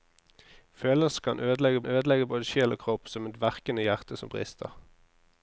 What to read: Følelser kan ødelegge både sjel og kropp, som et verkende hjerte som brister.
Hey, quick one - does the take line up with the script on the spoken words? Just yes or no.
no